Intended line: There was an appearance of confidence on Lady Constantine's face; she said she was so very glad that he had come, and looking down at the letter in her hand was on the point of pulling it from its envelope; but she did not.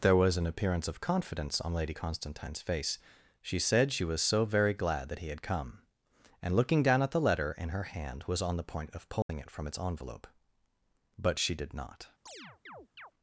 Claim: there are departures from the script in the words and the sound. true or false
true